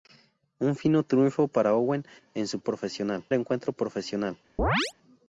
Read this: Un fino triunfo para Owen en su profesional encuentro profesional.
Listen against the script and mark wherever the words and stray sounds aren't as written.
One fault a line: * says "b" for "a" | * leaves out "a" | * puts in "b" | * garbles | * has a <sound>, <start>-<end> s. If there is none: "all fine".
* has a chirp, 4.6-4.9 s